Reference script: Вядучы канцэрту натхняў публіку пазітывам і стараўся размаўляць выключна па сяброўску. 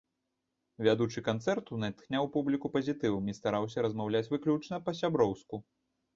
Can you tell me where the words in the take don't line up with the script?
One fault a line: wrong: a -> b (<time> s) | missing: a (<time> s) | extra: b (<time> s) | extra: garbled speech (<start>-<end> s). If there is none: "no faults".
no faults